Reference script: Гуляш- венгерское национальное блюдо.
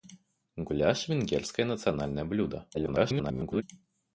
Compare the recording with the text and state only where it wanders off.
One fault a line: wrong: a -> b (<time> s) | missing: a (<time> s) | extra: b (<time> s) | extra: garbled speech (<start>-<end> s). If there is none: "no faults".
extra: garbled speech (2.7-3.6 s)